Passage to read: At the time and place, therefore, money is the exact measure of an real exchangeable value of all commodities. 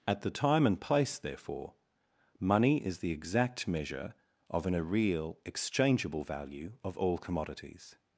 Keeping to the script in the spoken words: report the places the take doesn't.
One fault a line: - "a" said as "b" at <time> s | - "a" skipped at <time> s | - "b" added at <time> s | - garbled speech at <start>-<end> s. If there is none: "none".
none